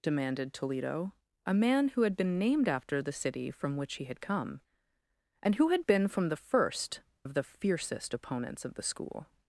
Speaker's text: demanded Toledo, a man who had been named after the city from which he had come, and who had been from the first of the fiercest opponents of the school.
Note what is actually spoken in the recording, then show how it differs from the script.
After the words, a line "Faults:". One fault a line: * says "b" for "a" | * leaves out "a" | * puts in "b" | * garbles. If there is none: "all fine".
demanded Toledo, a man who had been named after the city from which he had come, and who had been from the first of the fiercest opponents of the school.
Faults:
all fine